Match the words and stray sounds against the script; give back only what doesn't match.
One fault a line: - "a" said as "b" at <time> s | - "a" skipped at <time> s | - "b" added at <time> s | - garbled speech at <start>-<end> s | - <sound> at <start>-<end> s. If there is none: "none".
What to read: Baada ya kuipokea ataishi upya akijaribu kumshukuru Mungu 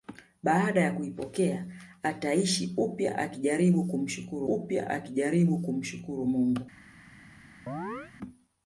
- "upya akijaribu kumshukuru" added at 4.5 s
- chirp at 7.7-8.1 s